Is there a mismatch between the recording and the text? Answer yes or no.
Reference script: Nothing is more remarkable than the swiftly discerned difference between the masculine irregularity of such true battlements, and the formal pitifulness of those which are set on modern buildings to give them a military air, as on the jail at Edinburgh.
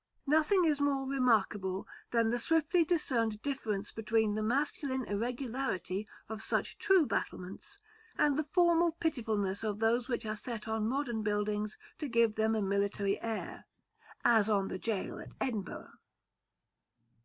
no